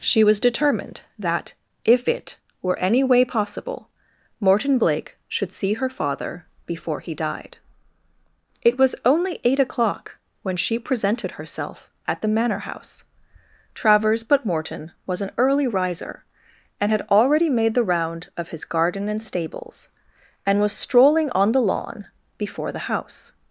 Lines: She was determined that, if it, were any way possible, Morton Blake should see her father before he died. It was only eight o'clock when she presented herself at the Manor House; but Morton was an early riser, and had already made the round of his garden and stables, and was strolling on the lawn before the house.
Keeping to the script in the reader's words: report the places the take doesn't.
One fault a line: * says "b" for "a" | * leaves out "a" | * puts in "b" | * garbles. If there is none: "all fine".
* puts in "travers"